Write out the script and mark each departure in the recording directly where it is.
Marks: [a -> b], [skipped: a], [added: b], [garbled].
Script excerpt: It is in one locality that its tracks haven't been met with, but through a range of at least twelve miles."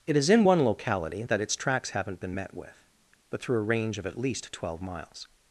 It is in one locality that its tracks haven't been met with, but through a range of at least twelve miles."